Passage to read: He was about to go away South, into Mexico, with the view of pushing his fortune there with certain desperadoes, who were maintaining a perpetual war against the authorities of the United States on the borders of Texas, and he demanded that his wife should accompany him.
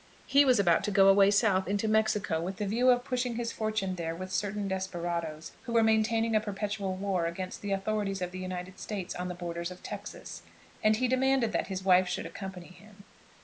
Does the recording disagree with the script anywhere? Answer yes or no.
no